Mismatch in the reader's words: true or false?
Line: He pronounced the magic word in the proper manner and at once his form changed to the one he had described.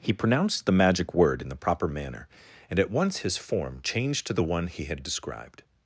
false